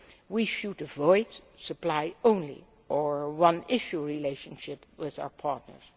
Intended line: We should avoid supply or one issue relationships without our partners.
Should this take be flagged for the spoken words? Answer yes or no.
yes